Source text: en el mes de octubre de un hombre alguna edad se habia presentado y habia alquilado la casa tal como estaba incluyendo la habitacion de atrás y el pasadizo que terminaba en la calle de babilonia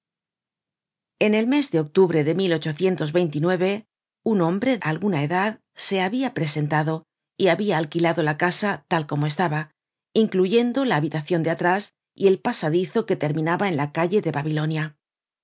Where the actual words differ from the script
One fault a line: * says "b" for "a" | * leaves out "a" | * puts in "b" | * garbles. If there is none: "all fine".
all fine